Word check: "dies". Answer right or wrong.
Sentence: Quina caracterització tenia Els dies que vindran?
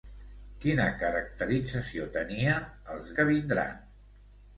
wrong